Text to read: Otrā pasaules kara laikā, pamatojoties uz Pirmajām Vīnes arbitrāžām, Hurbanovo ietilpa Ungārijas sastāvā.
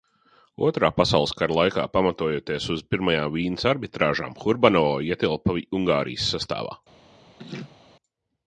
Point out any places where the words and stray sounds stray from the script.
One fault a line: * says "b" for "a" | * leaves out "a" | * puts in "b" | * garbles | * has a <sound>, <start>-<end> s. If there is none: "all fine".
* has a laugh, 7.4-7.8 s